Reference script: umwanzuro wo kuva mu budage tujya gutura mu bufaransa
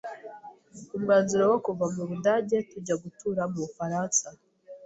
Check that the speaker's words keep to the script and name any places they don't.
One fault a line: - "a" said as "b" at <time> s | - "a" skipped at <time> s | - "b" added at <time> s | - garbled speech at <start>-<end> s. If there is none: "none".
none